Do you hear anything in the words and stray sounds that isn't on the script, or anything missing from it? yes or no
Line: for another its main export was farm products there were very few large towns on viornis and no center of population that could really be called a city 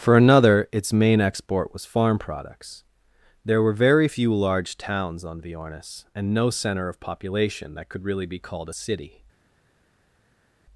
no